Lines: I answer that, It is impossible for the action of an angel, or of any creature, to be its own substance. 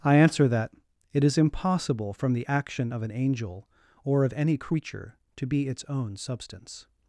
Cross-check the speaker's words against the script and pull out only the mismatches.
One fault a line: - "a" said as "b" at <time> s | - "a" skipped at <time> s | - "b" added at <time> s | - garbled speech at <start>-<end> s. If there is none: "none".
- "for" said as "from" at 2.1 s